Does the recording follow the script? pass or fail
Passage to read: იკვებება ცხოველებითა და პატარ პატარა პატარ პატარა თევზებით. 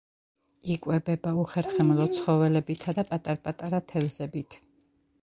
fail